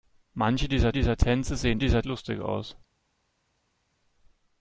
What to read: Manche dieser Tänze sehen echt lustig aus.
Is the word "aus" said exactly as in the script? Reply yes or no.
yes